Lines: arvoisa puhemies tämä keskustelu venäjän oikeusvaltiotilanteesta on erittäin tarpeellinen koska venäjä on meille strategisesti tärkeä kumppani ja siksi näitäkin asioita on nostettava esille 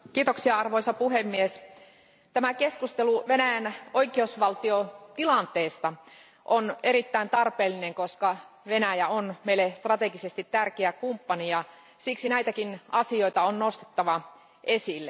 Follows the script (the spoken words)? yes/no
yes